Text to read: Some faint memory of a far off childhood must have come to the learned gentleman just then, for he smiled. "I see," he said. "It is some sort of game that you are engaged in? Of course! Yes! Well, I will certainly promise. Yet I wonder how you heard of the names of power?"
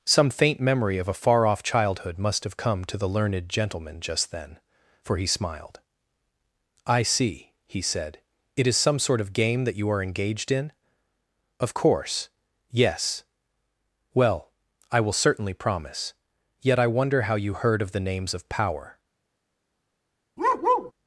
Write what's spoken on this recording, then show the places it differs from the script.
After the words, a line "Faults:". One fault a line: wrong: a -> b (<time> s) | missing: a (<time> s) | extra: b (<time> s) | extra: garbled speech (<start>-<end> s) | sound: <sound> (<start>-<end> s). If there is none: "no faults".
Some faint memory of a far off childhood must have come to the learned gentleman just then, for he smiled. "I see," he said. "It is some sort of game that you are engaged in? Of course! Yes! Well, I will certainly promise. Yet I wonder how you heard of the names of power?"
Faults:
sound: bark (20.4-20.9 s)